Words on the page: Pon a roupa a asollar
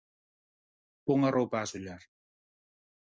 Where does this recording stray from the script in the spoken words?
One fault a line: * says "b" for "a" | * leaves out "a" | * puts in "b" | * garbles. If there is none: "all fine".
all fine